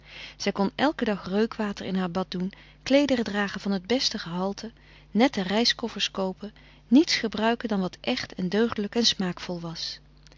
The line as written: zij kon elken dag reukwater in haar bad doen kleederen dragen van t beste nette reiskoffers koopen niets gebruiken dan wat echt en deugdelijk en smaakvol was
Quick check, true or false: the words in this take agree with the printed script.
false